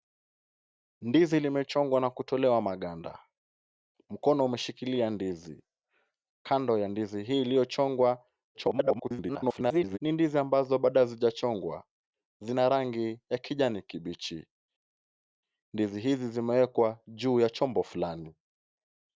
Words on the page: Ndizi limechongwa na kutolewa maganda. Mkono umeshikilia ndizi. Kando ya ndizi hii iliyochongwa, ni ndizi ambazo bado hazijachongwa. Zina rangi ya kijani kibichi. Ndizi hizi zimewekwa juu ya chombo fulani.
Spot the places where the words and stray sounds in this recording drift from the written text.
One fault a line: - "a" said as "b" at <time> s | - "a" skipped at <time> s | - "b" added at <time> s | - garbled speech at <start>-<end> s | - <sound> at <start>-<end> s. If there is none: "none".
- garbled speech at 8.5-10.0 s